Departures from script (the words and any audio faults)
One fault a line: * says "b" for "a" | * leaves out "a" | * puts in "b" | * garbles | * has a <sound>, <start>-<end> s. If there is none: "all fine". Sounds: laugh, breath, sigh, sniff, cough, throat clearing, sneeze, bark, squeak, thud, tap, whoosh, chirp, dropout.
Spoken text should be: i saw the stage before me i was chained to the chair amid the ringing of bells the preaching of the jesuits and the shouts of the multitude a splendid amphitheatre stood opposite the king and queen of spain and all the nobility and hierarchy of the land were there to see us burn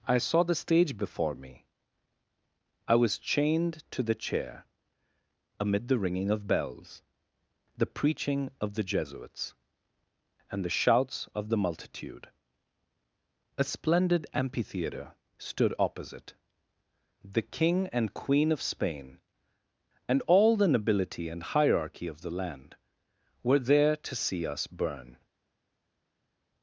all fine